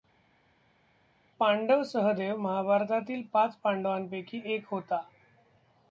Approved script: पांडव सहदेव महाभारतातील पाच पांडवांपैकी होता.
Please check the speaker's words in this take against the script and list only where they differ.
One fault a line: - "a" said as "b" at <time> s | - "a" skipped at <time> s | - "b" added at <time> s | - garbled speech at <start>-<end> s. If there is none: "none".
- "एक" added at 4.4 s